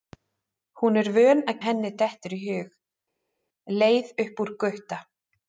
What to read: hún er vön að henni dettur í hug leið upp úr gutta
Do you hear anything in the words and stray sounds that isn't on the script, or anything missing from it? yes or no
no